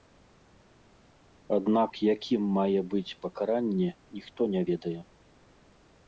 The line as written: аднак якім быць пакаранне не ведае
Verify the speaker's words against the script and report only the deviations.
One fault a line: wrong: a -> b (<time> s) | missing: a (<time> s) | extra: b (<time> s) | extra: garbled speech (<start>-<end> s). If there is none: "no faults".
extra: мае (2.6 s)
extra: ніхто (4.2 s)